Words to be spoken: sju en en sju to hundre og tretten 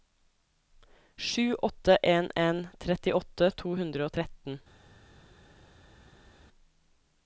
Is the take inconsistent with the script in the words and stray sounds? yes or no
yes